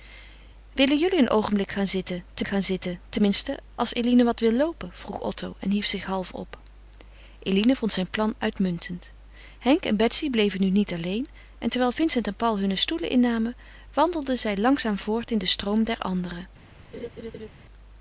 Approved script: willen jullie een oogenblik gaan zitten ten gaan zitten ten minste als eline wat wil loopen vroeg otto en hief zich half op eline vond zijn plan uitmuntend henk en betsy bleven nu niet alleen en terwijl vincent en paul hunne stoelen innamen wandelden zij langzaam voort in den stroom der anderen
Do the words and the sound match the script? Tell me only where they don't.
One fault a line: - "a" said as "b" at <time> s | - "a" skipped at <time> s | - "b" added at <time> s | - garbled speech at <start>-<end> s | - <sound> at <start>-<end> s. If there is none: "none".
- laugh at 16.9-17.5 s